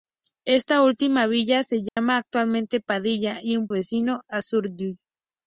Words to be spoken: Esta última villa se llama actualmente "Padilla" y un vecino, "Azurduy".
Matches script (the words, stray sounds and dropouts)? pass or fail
fail